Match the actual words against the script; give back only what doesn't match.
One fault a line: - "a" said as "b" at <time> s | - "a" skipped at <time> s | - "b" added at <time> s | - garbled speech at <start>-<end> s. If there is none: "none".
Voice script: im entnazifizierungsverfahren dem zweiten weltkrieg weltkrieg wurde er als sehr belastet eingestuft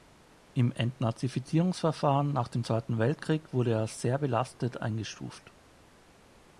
- "nach" added at 2.3 s
- "weltkrieg" skipped at 3.5 s